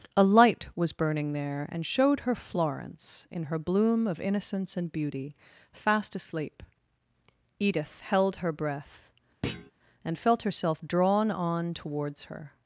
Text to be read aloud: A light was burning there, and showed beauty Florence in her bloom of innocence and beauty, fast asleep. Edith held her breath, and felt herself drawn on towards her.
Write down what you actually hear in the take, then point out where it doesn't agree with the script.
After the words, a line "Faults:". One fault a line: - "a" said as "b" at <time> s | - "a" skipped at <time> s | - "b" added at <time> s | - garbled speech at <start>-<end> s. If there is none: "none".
A light was burning there, and showed her Florence in her bloom of innocence and beauty, fast asleep. Edith held her breath, and felt herself drawn on towards her.
Faults:
- "beauty" said as "her" at 2.2 s